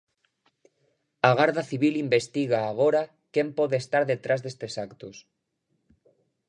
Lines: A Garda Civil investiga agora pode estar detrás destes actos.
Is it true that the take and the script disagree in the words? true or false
true